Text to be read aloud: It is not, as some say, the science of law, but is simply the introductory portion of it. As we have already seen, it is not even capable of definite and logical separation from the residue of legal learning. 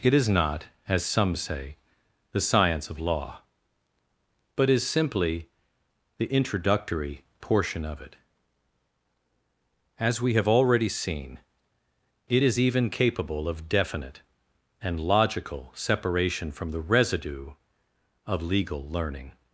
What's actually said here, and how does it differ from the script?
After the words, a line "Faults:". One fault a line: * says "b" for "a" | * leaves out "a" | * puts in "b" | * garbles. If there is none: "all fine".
It is not, as some say, the science of law, but is simply the introductory portion of it. As we have already seen, it is even capable of definite and logical separation from the residue of legal learning.
Faults:
* leaves out "not"